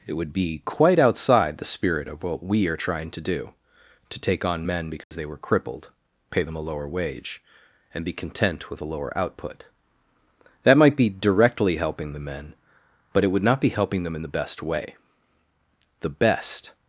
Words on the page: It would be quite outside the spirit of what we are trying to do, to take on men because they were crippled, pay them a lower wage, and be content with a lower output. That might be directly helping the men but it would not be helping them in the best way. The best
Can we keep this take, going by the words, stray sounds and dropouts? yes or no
no